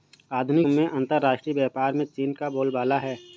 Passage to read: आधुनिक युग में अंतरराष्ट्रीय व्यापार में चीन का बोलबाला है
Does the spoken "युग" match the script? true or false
false